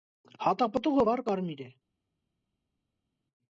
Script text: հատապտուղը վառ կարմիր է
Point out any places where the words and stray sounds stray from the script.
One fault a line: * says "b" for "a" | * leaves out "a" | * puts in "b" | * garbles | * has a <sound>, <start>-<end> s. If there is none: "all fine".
all fine